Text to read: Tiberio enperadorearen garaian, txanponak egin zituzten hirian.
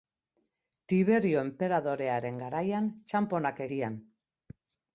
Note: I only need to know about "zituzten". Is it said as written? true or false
false